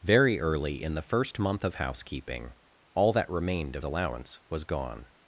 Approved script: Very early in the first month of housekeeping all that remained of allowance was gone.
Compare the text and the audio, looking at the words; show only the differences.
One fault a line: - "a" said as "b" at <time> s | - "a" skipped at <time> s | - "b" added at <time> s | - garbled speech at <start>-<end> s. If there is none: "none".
none